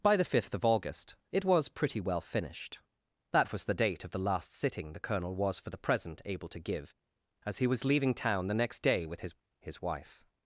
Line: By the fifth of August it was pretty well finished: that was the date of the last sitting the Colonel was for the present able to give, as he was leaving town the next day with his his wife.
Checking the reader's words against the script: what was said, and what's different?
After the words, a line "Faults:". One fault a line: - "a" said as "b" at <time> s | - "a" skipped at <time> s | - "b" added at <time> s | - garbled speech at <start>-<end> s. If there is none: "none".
By the fifth of August it was pretty well finished: that was the date of the last sitting the Colonel was for the present able to give, as he was leaving town the next day with his his wife.
Faults:
none